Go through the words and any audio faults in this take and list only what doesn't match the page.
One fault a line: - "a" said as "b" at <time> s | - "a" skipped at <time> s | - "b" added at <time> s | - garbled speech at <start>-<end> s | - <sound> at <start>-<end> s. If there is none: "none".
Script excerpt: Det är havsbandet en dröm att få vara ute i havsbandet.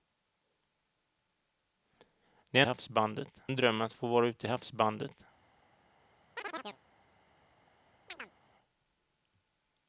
- chirp at 6.4-6.8 s
- chirp at 8.1-8.3 s